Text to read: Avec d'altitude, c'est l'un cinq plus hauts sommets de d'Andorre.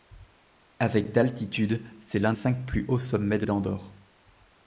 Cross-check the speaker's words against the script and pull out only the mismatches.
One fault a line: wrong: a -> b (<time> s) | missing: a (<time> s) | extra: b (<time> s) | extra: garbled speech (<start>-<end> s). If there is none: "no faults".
no faults